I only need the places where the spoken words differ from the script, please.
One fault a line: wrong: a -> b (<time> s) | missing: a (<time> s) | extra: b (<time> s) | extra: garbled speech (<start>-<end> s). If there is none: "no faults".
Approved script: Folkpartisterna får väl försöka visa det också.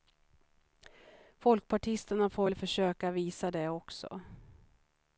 no faults